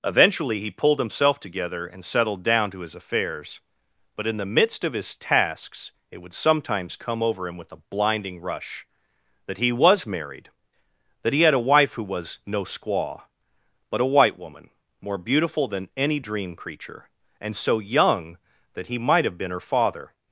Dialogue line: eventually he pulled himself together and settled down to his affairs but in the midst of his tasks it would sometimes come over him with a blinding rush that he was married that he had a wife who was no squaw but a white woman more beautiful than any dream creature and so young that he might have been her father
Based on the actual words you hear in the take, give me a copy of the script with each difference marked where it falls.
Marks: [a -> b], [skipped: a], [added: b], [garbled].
eventually he pulled himself together and settled down to his affairs but in the midst of his tasks it would sometimes come over him with a blinding rush that he was married that he had a wife who was no squaw but a white woman more beautiful than any dream creature and so young that he might have been her father